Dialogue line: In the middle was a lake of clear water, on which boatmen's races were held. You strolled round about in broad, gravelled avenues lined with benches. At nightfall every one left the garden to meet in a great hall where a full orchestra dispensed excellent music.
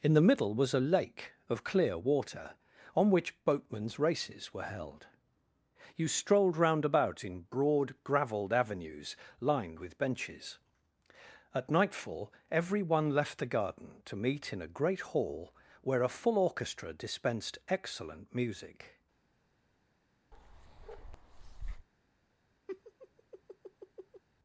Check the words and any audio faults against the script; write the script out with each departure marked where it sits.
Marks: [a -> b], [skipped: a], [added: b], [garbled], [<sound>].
In the middle was a lake of clear water, on which boatmen's races were held. You strolled round about in broad, gravelled avenues lined with benches. At nightfall every one left the garden to meet in a great hall where a full orchestra dispensed excellent music. [bark] [laugh]